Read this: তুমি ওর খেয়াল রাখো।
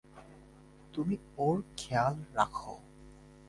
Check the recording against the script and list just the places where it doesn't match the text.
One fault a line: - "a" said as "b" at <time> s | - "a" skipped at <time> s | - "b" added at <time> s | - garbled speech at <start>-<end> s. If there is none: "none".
none